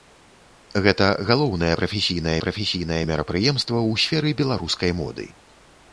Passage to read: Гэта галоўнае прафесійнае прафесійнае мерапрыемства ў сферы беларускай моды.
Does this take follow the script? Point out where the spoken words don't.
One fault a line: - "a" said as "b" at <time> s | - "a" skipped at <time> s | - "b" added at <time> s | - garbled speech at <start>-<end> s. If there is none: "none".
none